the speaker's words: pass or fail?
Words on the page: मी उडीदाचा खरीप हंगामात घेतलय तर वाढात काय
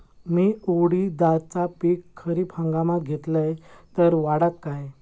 fail